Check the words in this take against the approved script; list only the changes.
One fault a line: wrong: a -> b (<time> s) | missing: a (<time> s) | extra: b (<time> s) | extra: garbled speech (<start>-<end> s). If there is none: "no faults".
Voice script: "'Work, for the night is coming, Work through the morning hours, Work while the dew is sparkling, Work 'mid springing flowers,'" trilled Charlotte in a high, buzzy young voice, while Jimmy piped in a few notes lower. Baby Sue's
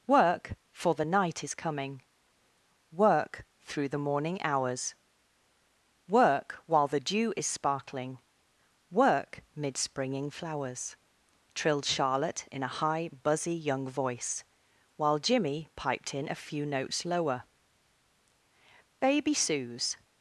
no faults